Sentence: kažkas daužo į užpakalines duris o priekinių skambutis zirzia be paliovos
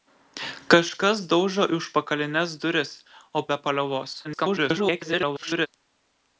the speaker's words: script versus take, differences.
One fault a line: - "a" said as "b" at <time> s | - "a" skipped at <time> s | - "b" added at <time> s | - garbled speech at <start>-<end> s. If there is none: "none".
- "priekinių skambutis zirzia" skipped at 3.4 s
- garbled speech at 4.2-5.7 s